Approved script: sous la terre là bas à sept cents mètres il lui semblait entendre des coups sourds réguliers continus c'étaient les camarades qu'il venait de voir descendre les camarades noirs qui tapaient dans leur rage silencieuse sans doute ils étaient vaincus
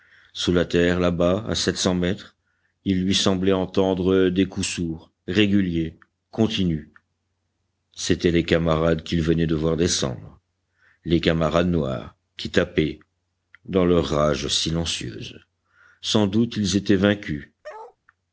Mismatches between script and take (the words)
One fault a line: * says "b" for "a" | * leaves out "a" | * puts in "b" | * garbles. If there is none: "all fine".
all fine